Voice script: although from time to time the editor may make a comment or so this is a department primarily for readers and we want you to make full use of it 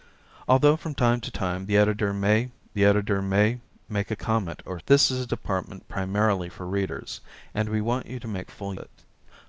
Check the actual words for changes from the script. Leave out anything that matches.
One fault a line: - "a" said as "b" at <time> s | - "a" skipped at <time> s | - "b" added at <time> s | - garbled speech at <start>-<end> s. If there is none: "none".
- "the editor may" added at 2.7 s
- "so" skipped at 4.8 s
- "use of" skipped at 8.7 s